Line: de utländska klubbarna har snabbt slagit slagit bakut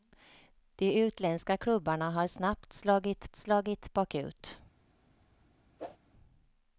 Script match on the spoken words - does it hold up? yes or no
yes